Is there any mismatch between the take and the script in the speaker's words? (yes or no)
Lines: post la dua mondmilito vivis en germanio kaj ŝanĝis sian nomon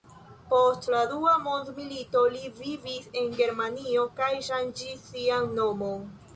yes